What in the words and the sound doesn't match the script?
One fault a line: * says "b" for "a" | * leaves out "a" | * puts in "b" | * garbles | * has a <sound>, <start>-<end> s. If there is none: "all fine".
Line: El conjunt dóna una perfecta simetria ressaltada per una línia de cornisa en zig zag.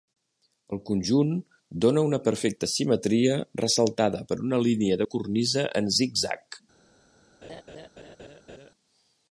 * has a laugh, 7.4-8.7 s